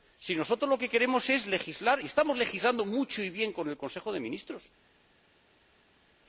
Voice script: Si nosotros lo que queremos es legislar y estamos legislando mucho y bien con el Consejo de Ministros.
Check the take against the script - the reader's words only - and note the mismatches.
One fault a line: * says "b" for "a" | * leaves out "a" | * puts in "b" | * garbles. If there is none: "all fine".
all fine